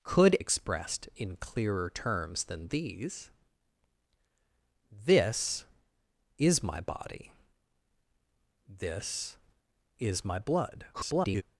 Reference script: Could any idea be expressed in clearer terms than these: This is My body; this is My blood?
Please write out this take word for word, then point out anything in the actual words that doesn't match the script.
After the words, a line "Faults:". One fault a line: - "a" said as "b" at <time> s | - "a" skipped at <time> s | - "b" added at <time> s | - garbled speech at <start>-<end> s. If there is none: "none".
Could expressed in clearer terms than these: This is My body; this is My blood? [garbled]
Faults:
- "any idea be" skipped at 0.4 s
- garbled speech at 10.9-11.4 s